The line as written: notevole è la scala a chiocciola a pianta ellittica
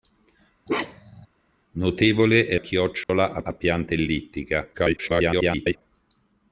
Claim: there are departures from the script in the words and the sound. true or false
true